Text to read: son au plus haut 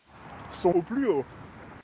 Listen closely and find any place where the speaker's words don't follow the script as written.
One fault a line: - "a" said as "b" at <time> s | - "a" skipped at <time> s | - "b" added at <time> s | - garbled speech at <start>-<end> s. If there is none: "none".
none